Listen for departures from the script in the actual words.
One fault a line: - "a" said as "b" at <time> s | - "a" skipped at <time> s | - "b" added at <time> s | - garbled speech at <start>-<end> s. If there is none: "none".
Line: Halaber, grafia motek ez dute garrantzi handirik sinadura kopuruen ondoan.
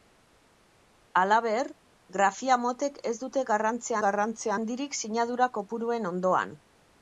- "garrantzi" added at 4.1 s